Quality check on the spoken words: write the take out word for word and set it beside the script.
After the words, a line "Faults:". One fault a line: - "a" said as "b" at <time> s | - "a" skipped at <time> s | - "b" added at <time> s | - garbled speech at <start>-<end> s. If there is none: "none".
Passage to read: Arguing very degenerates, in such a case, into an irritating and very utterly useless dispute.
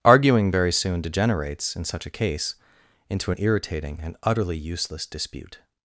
Arguing very soon degenerates, in such a case, into an irritating and utterly useless dispute.
Faults:
- "soon" added at 0.7 s
- "very" skipped at 4.2 s